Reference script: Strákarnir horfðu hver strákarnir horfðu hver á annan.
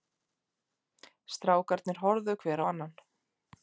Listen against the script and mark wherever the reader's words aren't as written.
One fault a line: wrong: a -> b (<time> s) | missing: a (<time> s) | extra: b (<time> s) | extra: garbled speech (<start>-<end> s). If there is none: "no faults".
missing: strákarnir horfðu hver (2.6 s)